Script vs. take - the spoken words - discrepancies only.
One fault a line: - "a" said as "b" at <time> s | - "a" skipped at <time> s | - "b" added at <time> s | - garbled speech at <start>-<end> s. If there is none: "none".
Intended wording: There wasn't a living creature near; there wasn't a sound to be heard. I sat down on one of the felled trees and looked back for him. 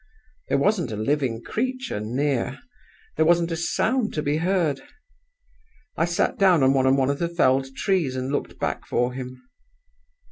- "on one" added at 6.9 s